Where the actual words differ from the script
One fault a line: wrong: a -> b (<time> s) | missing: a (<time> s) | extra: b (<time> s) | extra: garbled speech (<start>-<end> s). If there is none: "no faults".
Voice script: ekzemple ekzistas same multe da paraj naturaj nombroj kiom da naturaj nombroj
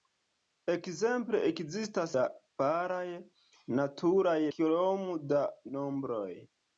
missing: same multe (2.1 s)
missing: nombroj (4.3 s)
missing: naturaj (5.4 s)